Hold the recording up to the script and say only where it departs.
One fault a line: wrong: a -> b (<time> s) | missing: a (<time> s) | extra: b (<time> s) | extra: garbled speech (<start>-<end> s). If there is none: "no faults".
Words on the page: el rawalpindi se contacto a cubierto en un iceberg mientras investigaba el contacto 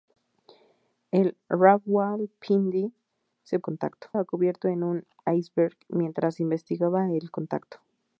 no faults